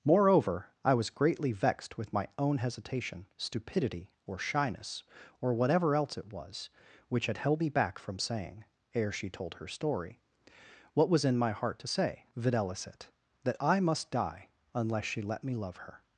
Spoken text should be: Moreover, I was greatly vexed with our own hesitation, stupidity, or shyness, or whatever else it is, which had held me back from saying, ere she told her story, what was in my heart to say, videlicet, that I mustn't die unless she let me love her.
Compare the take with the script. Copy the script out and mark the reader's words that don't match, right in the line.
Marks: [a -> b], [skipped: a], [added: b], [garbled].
Moreover, I was greatly vexed with [our -> my] own hesitation, stupidity, or shyness, or whatever else it [is, -> was] which had held me back from saying, ere she told her story, what was in my heart to say, videlicet, that I [mustn't -> must] die unless she let me love her.